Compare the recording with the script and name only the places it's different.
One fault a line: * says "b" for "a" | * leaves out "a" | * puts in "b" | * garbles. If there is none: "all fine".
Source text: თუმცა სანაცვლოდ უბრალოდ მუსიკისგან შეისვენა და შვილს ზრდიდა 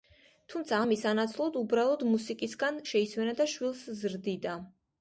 * puts in "ამის"